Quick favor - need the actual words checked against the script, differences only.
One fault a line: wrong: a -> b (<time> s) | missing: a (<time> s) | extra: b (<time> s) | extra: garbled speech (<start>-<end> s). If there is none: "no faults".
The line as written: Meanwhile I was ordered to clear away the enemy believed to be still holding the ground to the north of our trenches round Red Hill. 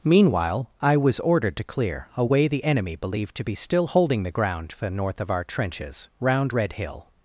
no faults